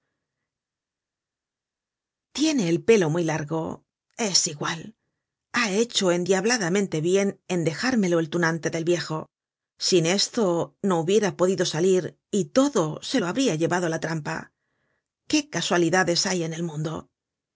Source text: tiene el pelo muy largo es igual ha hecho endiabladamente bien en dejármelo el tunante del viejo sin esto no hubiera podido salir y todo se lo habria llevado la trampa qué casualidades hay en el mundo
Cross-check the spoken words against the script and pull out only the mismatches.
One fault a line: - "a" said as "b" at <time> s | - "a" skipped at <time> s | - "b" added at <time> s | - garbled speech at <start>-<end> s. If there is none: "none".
none